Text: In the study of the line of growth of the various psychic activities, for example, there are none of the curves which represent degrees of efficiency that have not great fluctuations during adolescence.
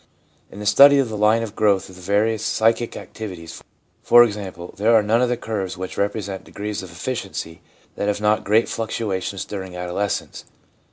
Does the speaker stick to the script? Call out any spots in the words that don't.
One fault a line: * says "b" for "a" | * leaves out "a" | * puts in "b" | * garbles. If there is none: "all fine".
all fine